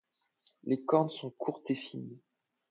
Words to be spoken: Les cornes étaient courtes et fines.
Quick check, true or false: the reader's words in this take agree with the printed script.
false